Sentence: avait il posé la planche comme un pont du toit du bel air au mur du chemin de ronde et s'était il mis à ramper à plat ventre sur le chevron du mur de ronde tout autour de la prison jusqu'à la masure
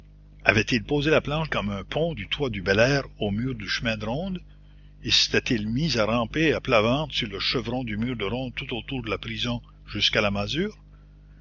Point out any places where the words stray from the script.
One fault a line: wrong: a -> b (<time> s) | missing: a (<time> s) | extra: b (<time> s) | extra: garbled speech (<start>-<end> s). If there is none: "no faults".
no faults